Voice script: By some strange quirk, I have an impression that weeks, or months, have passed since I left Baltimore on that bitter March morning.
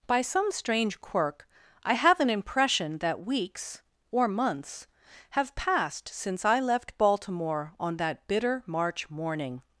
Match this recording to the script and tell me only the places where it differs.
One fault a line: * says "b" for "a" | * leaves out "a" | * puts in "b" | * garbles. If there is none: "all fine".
all fine